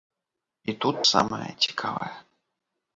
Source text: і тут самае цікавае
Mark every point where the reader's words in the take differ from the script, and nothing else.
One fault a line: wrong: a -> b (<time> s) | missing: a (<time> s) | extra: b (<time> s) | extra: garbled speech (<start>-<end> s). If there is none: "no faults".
no faults